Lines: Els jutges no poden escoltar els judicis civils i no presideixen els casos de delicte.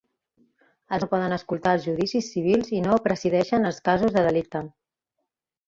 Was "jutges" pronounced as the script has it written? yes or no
no